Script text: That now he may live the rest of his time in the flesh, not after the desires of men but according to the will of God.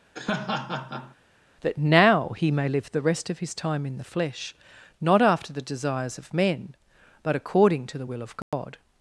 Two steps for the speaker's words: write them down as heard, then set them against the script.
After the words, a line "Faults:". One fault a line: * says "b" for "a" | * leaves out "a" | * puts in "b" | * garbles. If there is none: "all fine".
That now he may live the rest of his time in the flesh, not after the desires of men but according to the will of God.
Faults:
all fine